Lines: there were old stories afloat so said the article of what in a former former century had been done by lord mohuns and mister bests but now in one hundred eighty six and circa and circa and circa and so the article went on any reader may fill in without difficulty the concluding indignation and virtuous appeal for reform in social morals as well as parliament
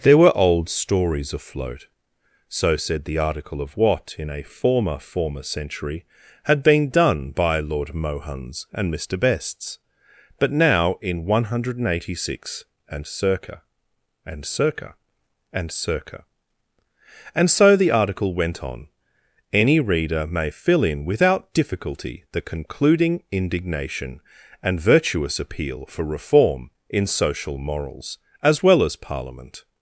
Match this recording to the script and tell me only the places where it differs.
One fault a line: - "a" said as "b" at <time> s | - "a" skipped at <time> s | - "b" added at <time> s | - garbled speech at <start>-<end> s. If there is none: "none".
none